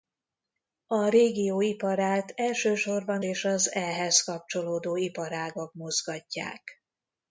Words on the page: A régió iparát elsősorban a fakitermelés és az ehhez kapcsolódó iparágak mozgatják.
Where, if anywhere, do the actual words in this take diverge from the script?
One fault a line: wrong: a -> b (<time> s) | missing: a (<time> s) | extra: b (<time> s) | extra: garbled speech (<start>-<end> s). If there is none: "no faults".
missing: a fakitermelés (3.2 s)